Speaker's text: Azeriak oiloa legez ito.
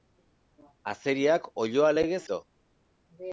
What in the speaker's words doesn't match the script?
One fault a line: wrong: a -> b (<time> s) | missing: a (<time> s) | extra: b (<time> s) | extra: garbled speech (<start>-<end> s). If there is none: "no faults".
no faults